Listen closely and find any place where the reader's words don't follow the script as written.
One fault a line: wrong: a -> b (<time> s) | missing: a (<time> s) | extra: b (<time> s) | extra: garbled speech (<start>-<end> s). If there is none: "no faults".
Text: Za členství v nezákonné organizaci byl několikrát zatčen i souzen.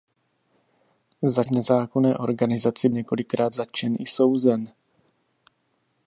missing: členství (1.4 s)
missing: byl (2.9 s)